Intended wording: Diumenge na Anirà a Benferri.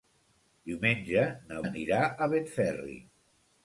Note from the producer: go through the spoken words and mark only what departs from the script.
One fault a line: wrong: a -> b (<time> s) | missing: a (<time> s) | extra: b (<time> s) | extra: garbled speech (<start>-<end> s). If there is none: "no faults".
no faults